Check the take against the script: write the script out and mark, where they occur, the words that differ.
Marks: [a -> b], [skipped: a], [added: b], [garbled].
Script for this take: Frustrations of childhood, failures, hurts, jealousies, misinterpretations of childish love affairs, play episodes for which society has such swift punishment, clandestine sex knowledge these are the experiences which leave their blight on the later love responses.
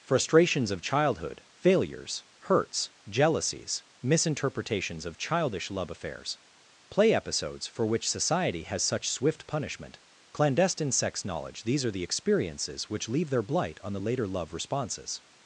Frustrations of childhood, failures, hurts, jealousies, misinterpretations of childish love affairs, play episodes for which society has such swift punishment, clandestine sex knowledge these are the experiences which leave their blight on the later love responses.